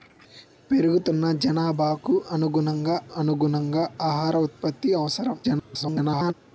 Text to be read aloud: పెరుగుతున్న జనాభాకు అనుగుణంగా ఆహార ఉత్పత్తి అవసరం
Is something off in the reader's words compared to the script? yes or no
yes